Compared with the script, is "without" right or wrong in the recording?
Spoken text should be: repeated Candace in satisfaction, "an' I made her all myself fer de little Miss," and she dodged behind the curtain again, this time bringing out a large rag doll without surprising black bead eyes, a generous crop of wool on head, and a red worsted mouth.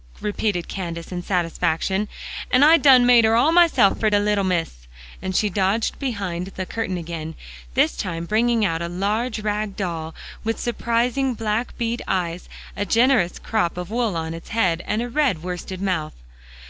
wrong